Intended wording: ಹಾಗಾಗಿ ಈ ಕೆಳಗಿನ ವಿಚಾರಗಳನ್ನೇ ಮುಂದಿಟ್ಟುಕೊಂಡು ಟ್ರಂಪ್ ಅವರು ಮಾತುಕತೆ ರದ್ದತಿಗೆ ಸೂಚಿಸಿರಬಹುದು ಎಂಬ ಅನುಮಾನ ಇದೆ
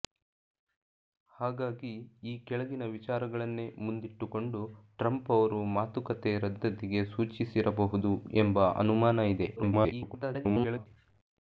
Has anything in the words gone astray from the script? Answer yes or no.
yes